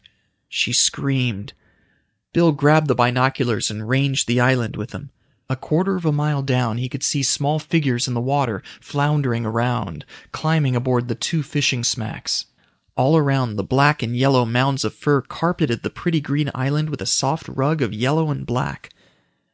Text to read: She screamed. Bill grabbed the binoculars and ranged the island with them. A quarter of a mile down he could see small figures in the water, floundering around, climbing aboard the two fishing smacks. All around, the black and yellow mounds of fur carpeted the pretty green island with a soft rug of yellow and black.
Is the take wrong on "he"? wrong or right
right